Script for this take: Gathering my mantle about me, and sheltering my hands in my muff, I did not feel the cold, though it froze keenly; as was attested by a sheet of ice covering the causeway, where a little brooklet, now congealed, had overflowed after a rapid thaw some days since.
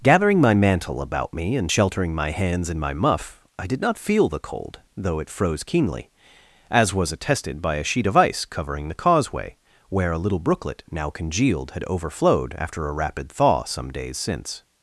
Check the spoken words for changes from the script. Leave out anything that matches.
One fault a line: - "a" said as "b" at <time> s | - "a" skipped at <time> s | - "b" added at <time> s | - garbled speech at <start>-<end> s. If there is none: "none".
none